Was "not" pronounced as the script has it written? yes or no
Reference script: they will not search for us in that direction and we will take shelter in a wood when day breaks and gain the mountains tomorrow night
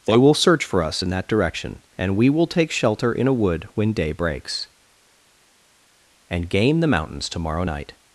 no